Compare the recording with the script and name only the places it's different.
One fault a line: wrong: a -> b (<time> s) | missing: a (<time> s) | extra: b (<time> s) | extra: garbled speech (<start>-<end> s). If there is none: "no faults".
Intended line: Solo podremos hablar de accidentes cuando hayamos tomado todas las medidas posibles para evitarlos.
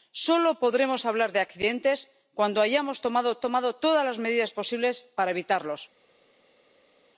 extra: tomado (3.4 s)